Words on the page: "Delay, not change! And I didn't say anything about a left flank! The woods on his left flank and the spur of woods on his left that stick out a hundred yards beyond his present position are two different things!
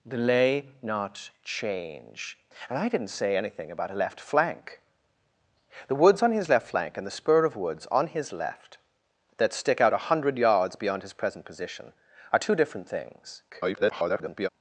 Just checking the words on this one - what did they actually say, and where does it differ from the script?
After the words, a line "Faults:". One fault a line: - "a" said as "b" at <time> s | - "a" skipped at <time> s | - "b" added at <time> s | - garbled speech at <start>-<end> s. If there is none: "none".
"Delay, not change! And I didn't say anything about a left flank! The woods on his left flank and the spur of woods on his left that stick out a hundred yards beyond his present position are two different things! [garbled]
Faults:
- garbled speech at 13.5-14.5 s